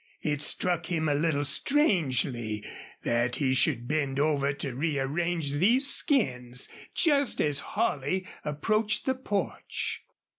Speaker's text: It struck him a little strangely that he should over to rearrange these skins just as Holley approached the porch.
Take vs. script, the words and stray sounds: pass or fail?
fail